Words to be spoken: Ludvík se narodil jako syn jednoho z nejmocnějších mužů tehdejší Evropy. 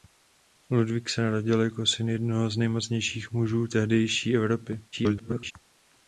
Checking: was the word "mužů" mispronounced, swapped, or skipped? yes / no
no